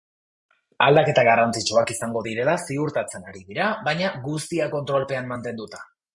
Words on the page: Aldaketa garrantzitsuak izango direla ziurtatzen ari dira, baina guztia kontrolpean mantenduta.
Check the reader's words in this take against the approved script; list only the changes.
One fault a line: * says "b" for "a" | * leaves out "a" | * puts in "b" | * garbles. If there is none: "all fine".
all fine